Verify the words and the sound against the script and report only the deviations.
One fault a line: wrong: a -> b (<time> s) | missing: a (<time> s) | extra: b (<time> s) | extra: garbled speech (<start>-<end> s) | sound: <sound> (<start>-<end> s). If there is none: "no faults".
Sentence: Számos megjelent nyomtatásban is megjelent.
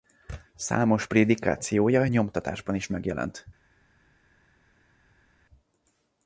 wrong: megjelent -> prédikációja (1.1 s)